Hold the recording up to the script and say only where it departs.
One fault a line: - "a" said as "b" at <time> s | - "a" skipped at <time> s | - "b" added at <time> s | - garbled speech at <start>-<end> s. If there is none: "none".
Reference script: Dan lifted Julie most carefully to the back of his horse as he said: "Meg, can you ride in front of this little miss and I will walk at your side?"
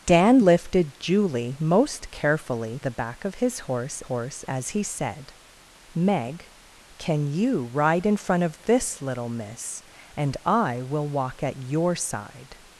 - "to" skipped at 2.8 s
- "horse" added at 4.0 s